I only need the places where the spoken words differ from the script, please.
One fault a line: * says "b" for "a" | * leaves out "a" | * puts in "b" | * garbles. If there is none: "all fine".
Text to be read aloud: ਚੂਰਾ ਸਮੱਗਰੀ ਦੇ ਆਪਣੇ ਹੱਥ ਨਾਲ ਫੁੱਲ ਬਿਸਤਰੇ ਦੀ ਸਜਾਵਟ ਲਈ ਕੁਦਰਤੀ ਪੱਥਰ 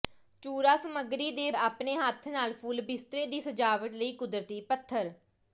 all fine